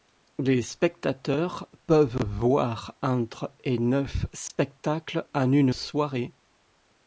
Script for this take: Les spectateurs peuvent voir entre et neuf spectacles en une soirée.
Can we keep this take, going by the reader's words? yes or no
yes